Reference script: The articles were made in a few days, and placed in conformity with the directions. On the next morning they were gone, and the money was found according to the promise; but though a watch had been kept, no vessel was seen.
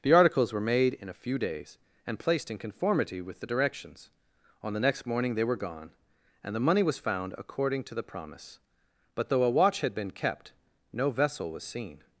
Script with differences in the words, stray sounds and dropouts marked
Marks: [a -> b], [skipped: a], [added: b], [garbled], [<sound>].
The articles were made in a few days, and placed in conformity with the directions. On the next morning they were gone, and the money was found according to the promise; but though a watch had been kept, no vessel was seen.